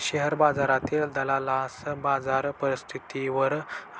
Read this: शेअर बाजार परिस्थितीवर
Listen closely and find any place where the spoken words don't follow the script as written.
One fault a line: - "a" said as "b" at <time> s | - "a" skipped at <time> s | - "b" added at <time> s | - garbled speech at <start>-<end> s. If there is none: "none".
- "बाजारातील दलालास" added at 0.3 s